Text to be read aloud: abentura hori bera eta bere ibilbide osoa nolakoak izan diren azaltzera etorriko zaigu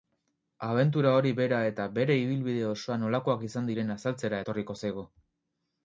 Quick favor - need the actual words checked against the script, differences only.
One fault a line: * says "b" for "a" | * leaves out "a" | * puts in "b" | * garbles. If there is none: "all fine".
all fine